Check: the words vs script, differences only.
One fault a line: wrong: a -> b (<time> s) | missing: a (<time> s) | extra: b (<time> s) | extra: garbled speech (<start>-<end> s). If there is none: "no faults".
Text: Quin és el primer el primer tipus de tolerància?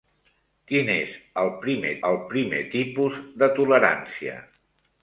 no faults